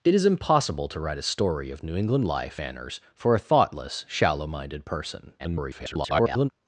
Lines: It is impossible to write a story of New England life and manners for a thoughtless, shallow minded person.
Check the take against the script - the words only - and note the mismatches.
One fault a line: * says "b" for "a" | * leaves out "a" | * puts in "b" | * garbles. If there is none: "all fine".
* leaves out "and"
* garbles